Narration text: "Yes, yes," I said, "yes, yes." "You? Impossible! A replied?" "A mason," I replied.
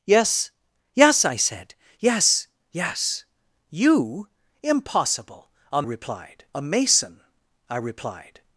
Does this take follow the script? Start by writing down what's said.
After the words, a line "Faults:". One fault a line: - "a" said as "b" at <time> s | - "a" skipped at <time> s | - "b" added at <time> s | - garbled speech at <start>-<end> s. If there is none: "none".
"Yes, yes," I said, "yes, yes." "You? Impossible! A replied?" "A mason," I replied.
Faults:
none